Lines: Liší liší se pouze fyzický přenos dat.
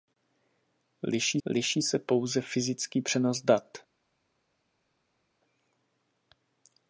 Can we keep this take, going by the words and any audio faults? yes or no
yes